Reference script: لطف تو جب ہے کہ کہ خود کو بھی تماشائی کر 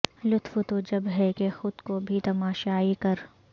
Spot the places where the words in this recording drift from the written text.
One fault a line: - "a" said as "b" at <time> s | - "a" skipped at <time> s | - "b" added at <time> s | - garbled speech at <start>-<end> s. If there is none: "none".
- "کہ" skipped at 1.5 s